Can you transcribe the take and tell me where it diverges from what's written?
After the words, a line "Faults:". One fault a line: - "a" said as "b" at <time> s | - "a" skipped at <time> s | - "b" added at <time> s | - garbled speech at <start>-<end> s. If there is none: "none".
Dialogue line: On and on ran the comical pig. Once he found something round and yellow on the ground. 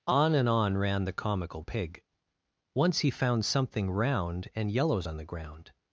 On and on ran the comical pig. Once he found something round and yellows on the ground.
Faults:
- "yellow" said as "yellows" at 4.7 s